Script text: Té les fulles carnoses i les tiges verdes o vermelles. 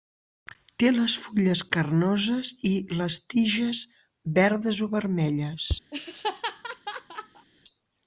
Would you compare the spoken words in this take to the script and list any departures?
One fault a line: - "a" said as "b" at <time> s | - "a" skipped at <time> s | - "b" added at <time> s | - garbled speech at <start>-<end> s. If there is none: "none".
none